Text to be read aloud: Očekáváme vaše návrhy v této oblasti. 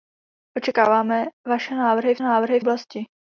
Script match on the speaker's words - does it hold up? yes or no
no